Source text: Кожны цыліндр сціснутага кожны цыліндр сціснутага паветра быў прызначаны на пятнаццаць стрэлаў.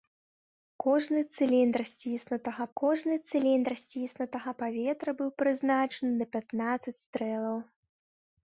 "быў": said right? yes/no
yes